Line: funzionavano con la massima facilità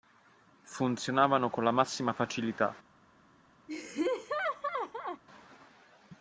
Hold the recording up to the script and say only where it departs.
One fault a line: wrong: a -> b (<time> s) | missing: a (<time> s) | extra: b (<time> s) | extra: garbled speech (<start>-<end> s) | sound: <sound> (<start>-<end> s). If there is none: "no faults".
sound: laugh (3.7-5.2 s)